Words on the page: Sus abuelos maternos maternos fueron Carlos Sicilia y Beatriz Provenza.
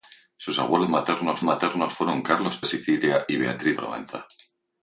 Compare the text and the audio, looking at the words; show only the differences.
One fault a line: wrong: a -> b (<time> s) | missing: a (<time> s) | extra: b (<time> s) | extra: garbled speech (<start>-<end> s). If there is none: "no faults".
no faults